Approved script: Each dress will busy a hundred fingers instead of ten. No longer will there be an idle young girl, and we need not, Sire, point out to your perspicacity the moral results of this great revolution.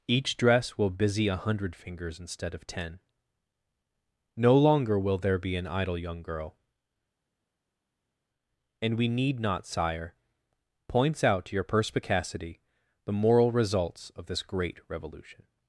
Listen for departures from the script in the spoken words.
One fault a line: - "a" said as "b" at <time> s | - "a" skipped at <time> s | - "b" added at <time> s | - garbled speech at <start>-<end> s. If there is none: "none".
- "point" said as "points" at 10.9 s